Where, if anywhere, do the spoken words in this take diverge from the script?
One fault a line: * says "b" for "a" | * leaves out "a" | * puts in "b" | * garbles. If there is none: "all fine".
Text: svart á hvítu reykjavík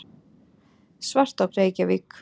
* leaves out "hvítu"